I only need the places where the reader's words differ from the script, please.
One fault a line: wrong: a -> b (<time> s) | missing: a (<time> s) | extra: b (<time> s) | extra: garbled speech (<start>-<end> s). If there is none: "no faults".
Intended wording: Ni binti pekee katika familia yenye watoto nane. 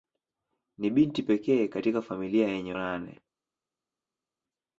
missing: watoto (2.7 s)